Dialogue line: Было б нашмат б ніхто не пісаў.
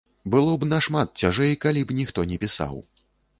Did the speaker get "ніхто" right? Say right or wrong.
right